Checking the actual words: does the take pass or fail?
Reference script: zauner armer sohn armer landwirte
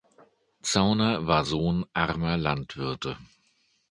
fail